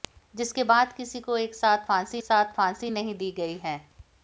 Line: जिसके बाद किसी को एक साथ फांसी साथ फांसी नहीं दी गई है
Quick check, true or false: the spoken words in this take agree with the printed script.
true